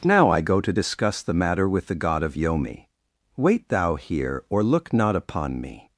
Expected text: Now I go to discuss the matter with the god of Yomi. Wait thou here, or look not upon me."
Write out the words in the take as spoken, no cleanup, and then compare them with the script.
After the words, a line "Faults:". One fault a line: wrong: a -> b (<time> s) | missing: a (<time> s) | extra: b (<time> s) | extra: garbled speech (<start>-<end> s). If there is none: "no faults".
Now I go to discuss the matter with the god of Yomi. Wait thou here, or look not upon me."
Faults:
no faults